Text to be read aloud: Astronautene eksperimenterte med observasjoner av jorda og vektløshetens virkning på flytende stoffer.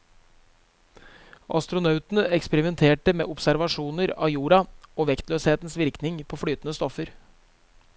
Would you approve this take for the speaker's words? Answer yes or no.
yes